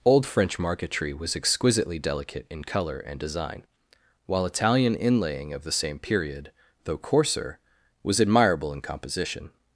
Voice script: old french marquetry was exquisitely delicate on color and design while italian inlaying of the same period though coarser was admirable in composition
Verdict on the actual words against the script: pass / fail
fail